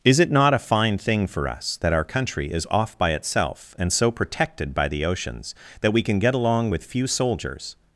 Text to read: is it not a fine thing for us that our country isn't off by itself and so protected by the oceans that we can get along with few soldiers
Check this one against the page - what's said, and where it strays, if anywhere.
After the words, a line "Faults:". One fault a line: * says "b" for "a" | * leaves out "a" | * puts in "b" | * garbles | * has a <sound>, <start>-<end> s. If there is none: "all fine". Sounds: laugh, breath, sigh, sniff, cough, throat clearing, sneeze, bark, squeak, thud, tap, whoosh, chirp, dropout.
is it not a fine thing for us that our country is off by itself and so protected by the oceans that we can get along with few soldiers
Faults:
* says "is" for "isn't"